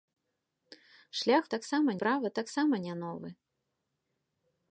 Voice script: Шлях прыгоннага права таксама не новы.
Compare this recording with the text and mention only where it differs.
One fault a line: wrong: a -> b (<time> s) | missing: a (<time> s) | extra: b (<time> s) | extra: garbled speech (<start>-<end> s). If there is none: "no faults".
wrong: прыгоннага -> таксама (1.6 s)